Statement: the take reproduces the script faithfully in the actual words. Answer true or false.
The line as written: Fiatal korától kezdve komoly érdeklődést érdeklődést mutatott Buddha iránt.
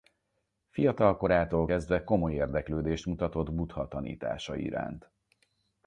false